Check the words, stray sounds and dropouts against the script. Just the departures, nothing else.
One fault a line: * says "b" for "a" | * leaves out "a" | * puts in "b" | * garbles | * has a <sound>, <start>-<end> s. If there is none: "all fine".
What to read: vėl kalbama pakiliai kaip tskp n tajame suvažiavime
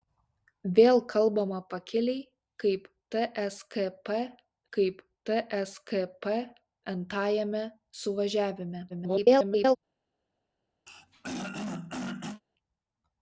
* puts in "kaip tskp"
* garbles
* has a throat clearing, 10.9-12.4 s